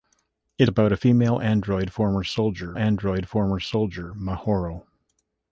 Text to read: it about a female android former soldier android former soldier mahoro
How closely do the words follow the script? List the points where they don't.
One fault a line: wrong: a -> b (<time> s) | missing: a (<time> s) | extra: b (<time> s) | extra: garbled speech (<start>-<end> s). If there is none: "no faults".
no faults